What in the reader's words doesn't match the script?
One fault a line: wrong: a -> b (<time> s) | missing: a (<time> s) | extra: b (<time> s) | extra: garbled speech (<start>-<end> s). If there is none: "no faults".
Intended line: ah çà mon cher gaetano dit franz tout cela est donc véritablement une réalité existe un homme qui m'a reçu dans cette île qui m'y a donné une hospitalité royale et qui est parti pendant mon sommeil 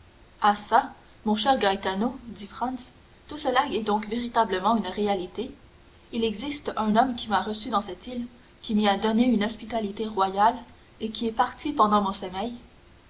extra: il (6.1 s)